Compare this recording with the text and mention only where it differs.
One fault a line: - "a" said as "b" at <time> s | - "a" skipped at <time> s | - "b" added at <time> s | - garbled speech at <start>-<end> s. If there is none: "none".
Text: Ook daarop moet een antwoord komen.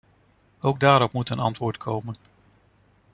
none